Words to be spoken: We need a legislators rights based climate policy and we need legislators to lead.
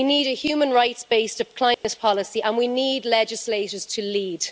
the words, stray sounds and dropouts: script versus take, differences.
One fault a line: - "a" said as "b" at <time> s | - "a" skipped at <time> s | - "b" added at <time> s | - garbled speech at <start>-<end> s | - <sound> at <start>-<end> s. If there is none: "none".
- "legislators" said as "human" at 0.3 s
- dropout at 1.7-1.8 s